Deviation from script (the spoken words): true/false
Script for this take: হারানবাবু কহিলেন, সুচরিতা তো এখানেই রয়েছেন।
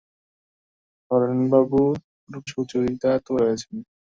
true